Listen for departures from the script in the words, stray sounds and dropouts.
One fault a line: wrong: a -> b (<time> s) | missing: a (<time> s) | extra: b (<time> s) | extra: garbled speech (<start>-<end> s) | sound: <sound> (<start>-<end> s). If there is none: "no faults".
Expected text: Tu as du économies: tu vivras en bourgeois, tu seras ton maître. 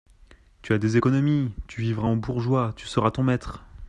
wrong: du -> des (0.8 s)